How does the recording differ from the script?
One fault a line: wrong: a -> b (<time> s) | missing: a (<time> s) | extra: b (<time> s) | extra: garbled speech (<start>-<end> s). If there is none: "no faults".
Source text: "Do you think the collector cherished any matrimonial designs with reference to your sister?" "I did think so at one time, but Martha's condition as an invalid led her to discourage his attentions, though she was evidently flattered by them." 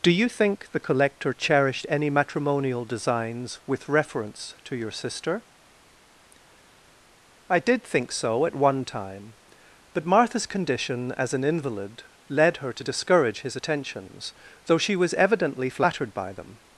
no faults